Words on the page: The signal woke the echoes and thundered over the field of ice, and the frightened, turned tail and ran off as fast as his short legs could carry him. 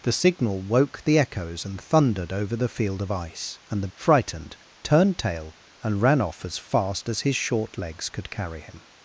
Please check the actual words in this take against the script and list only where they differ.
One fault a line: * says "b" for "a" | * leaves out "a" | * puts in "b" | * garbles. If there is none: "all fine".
all fine